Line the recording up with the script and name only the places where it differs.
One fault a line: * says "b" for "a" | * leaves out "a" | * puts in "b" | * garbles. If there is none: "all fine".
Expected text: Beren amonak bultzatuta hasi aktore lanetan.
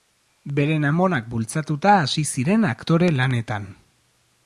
* puts in "ziren"